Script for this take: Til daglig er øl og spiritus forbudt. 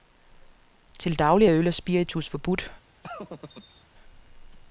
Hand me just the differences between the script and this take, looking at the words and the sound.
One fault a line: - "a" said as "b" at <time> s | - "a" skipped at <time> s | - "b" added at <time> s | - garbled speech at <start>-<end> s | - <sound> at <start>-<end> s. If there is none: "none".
- laugh at 3.0-3.8 s